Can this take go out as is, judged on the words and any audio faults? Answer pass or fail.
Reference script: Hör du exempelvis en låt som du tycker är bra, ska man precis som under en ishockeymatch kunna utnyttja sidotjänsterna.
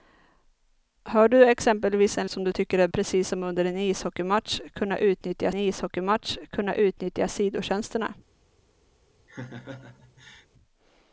fail